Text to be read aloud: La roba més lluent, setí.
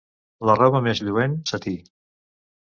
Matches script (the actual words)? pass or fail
pass